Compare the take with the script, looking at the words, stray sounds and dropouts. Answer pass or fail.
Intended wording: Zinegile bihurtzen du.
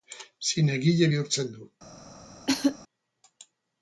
fail